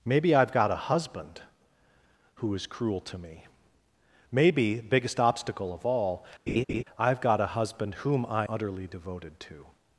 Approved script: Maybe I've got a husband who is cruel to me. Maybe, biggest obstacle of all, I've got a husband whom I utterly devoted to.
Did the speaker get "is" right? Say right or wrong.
right